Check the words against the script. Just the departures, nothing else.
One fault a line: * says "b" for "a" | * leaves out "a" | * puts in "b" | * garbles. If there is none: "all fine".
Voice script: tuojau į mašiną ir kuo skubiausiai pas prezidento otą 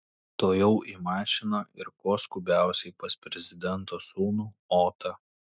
* puts in "sūnų"